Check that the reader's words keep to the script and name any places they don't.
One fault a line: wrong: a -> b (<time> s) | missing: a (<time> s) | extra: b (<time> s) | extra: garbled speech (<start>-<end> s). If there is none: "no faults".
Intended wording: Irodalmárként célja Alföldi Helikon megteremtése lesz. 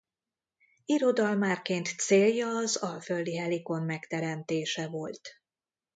extra: az (2.5 s)
wrong: lesz -> volt (4.9 s)